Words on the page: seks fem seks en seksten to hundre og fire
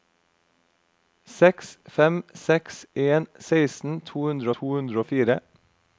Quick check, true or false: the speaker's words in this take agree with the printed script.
false